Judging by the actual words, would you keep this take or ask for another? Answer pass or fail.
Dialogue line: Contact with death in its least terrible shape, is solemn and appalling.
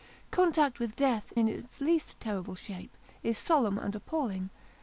pass